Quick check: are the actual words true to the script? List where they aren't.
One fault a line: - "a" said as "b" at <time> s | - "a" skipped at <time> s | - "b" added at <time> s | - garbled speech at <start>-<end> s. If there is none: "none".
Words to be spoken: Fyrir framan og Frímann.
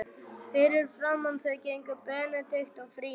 - "þau gengu Benedikt" added at 1.4 s